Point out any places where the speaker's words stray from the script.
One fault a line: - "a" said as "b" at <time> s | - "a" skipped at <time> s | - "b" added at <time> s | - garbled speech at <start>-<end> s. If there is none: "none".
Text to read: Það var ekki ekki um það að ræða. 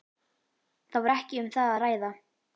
- "ekki" skipped at 1.4 s